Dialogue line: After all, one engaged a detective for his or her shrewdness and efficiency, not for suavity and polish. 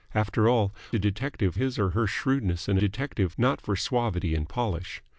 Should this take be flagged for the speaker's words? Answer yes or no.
yes